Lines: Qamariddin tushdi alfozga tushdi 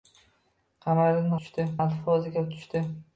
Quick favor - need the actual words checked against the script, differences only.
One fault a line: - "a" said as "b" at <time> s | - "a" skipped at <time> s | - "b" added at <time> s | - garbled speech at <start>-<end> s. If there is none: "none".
none